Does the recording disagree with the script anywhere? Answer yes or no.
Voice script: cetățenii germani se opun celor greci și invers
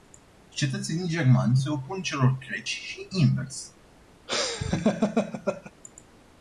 no